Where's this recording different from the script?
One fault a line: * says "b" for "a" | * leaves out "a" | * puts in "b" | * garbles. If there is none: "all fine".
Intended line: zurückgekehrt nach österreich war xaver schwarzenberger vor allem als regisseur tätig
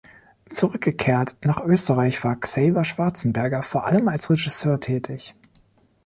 all fine